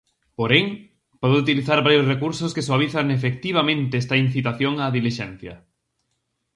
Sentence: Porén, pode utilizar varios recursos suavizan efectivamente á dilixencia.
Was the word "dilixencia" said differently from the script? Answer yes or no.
no